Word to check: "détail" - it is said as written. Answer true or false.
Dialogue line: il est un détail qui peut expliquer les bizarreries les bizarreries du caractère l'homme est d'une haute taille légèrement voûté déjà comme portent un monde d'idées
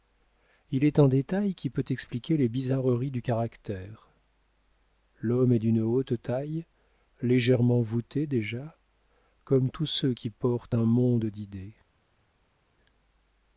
true